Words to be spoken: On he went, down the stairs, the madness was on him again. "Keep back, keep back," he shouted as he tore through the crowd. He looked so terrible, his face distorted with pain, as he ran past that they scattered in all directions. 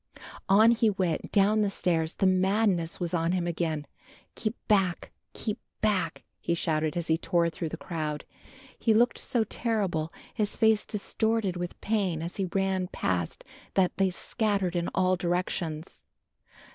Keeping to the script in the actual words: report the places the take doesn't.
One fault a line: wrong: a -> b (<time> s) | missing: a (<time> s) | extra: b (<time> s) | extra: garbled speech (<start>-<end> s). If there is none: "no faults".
no faults